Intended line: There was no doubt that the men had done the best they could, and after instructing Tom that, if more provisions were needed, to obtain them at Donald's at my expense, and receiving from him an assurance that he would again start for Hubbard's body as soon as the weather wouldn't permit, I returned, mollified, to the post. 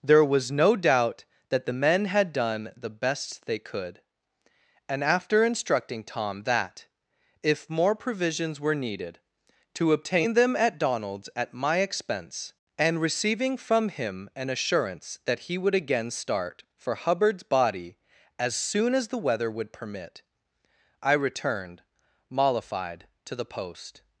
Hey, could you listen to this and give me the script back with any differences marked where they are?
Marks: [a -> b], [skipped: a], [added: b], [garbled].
There was no doubt that the men had done the best they could, and after instructing Tom that, if more provisions were needed, to obtain them at Donald's at my expense, and receiving from him an assurance that he would again start for Hubbard's body as soon as the weather [wouldn't -> would] permit, I returned, mollified, to the post.